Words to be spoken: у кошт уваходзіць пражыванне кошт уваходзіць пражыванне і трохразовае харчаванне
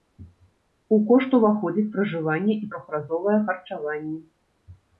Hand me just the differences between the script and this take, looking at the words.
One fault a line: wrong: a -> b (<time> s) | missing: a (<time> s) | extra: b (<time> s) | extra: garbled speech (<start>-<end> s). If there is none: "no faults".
missing: кошт уваходзіць пражыванне (2.6 s)